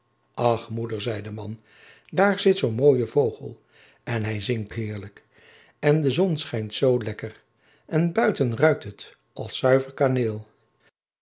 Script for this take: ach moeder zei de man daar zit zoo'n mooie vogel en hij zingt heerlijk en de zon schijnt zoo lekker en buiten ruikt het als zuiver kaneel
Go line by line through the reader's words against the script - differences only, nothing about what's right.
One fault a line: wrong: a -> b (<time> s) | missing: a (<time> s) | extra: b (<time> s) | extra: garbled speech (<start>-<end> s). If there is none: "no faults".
no faults